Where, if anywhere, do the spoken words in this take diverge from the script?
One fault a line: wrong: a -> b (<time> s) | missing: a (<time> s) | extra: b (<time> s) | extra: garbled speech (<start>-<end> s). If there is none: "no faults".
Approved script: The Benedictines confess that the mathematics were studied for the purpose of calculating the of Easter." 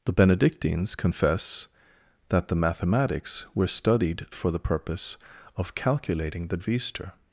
no faults